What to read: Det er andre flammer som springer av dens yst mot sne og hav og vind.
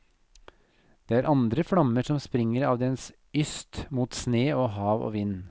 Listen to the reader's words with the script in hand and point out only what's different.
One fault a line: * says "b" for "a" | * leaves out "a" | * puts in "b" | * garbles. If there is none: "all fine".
all fine